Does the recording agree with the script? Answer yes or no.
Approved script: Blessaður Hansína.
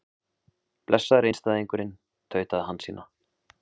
no